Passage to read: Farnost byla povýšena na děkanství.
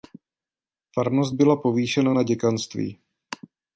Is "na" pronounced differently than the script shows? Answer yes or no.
no